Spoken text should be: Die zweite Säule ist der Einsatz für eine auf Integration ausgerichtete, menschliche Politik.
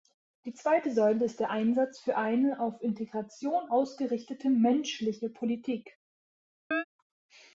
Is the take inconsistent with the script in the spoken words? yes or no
no